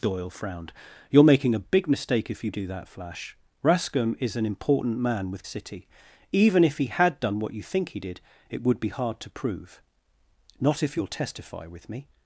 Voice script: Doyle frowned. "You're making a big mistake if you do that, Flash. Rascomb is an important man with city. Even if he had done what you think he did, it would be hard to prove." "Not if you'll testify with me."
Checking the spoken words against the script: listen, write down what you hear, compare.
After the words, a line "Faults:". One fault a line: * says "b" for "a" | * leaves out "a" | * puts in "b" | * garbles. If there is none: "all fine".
Doyle frowned. "You're making a big mistake if you do that, Flash. Rascomb is an important man with city. Even if he had done what you think he did, it would be hard to prove." "Not if you'll testify with me."
Faults:
all fine